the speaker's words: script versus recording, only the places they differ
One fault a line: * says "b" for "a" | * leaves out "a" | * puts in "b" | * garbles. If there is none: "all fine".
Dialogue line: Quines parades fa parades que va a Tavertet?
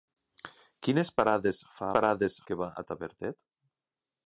all fine